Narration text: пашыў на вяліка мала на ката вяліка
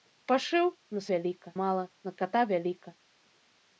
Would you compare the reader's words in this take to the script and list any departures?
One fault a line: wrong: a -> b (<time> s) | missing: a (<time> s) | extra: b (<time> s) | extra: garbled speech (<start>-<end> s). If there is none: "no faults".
no faults